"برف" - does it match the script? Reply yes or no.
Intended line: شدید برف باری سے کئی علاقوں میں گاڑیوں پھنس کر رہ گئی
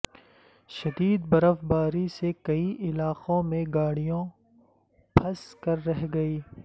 yes